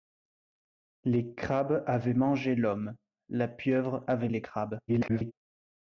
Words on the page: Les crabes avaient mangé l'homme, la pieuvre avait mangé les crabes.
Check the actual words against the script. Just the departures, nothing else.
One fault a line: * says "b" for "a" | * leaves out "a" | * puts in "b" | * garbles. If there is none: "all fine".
* leaves out "mangé"
* garbles